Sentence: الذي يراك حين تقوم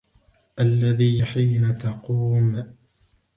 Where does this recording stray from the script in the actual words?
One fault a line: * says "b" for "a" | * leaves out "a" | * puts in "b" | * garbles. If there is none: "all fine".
* leaves out "يراك"